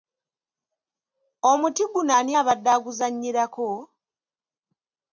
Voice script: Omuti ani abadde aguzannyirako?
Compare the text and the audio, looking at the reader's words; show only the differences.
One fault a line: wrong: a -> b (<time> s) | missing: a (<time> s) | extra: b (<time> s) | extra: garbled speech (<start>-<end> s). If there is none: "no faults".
extra: guno (1.9 s)